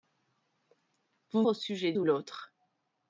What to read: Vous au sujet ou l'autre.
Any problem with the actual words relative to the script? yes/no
no